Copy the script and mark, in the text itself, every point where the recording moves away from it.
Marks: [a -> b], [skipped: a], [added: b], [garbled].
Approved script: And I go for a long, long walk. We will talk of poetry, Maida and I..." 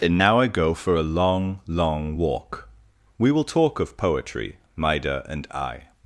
And [added: now] I go for a long, long walk. We will talk of poetry, Maida and I..."